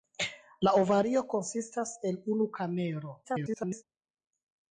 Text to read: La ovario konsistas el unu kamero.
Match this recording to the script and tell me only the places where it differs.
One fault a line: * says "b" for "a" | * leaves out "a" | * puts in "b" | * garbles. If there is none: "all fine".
* garbles